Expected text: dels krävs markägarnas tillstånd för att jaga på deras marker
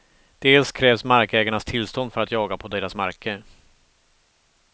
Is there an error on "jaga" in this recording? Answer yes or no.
no